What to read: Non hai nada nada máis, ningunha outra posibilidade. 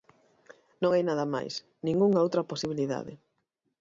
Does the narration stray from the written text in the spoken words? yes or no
yes